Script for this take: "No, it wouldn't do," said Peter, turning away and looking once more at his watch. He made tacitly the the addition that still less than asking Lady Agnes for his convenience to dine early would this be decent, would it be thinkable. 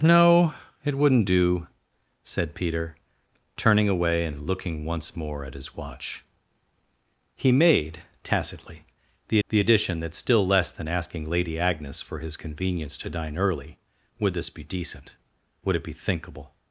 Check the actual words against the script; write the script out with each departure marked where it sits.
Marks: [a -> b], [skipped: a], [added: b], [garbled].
"No, it wouldn't do," said Peter, turning away and looking once more at his watch. He made tacitly the the addition that still less than asking Lady Agnes for his convenience to dine early would this be decent, would it be thinkable.